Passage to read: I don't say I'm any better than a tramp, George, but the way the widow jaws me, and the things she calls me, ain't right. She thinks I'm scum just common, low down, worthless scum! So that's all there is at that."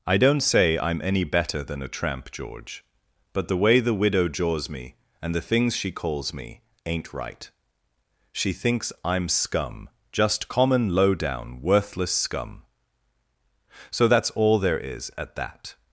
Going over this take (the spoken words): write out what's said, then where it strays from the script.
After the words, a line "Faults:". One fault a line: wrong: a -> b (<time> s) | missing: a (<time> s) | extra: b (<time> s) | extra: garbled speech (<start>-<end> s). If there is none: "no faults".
I don't say I'm any better than a tramp, George, but the way the widow jaws me, and the things she calls me, ain't right. She thinks I'm scum just common, low down, worthless scum! So that's all there is at that."
Faults:
no faults